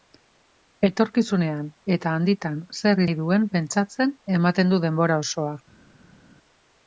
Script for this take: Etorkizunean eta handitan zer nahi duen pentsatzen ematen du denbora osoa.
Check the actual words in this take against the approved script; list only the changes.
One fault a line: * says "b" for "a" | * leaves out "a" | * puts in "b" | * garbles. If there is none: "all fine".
all fine